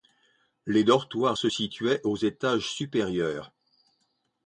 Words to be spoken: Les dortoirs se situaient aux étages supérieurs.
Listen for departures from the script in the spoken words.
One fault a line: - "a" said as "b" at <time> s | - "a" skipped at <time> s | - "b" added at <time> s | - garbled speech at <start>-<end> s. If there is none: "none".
none